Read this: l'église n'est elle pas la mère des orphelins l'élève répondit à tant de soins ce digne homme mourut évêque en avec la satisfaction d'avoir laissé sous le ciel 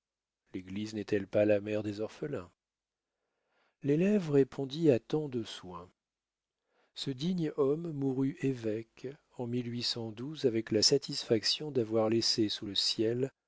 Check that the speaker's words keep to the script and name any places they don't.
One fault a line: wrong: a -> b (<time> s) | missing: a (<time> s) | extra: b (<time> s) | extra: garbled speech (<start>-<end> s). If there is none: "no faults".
no faults